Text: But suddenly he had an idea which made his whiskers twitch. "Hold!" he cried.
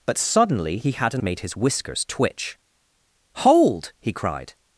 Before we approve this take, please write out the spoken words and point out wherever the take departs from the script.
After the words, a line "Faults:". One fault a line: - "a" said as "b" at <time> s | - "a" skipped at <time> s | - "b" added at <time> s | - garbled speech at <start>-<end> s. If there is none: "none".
But suddenly he had an made his whiskers twitch. "Hold!" he cried.
Faults:
- "idea which" skipped at 1.2 s